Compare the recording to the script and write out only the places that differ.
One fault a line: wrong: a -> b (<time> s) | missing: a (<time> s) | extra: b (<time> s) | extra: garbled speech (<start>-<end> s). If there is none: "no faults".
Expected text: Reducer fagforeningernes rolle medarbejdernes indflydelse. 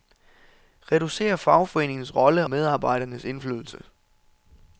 no faults